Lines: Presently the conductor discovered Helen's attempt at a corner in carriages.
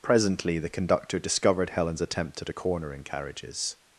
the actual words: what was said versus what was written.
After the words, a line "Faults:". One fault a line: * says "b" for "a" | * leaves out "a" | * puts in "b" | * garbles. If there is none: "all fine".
Presently the conductor discovered Helen's attempt at a corner in carriages.
Faults:
all fine